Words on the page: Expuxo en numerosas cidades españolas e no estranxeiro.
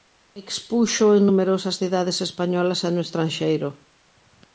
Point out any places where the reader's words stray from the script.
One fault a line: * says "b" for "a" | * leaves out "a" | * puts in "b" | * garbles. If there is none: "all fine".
all fine